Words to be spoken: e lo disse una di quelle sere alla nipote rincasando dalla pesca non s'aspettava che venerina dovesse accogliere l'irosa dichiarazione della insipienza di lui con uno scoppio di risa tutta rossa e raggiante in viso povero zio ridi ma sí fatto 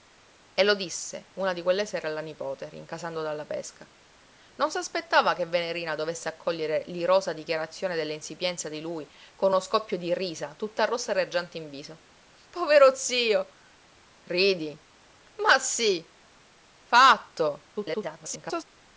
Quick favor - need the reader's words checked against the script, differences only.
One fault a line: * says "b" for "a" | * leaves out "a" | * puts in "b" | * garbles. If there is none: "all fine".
* garbles